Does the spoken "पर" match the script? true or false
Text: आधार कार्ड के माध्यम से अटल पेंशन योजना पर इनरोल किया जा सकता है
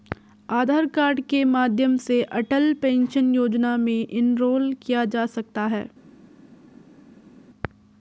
false